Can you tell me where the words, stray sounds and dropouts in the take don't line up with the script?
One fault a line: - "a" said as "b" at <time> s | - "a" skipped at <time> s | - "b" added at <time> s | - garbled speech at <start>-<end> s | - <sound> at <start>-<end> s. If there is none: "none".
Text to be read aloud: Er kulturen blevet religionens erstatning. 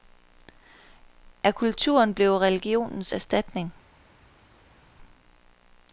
none